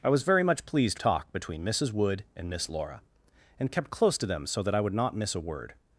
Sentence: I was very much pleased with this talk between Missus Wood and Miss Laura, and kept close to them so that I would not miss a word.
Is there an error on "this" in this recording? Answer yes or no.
yes